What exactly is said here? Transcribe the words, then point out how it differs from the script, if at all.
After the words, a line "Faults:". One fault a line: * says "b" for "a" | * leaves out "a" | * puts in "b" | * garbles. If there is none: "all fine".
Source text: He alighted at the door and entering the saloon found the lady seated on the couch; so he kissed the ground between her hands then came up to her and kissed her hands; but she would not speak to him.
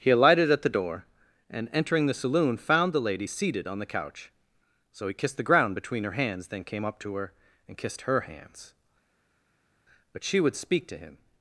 He alighted at the door and entering the saloon found the lady seated on the couch; so he kissed the ground between her hands then came up to her and kissed her hands; but she would speak to him.
Faults:
* leaves out "not"